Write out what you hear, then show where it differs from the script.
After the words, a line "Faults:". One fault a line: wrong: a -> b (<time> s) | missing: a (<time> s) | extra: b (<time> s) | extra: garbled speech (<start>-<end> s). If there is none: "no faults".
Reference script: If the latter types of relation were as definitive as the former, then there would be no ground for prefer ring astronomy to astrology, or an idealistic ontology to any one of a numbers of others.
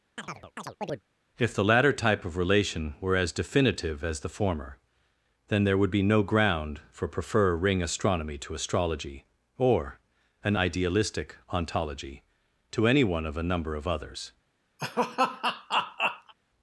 If the latter type of relation were as definitive as the former, then there would be no ground for prefer ring astronomy to astrology, or an idealistic ontology to any one of a number of others.
Faults:
wrong: types -> type (1.9 s)
wrong: numbers -> number (13.4 s)